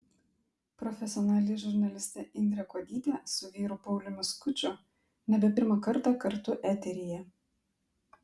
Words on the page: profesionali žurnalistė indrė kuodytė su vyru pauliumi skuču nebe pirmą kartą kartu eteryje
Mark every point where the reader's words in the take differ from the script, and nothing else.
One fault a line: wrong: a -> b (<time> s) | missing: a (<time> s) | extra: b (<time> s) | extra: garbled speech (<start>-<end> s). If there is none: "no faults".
no faults